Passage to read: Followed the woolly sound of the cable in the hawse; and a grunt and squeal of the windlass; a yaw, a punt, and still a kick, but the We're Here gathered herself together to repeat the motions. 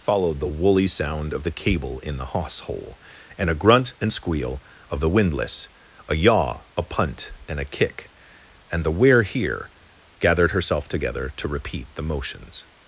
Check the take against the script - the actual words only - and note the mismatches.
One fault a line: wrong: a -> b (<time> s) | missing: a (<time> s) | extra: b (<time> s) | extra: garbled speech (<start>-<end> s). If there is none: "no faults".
extra: hole (2.6 s)
missing: still (7.6 s)
wrong: but -> and (8.7 s)